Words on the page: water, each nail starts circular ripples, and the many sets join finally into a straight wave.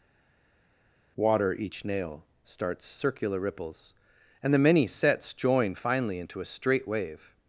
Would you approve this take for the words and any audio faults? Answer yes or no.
yes